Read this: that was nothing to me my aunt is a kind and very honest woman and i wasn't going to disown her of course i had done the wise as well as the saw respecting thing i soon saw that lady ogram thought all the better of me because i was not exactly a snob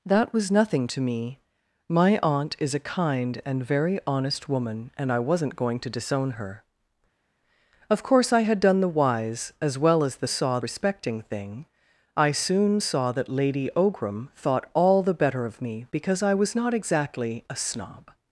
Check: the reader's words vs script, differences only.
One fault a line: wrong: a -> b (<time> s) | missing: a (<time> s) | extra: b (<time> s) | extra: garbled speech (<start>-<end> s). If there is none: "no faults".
no faults